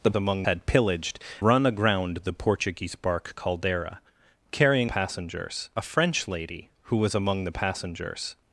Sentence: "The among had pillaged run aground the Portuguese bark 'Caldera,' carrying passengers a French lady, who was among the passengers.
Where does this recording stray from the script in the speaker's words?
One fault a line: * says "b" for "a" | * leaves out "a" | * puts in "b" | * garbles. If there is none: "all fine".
all fine